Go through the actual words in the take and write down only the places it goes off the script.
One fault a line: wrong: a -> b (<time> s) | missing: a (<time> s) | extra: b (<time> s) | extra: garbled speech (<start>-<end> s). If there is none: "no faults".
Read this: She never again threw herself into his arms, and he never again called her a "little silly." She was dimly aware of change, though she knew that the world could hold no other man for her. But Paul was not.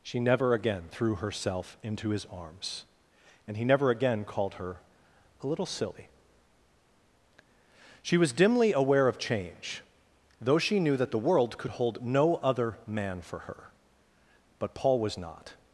no faults